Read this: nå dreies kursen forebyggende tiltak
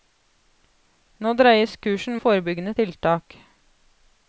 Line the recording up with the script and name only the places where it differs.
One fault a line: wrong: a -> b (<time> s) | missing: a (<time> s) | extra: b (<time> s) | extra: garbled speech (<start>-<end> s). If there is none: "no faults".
no faults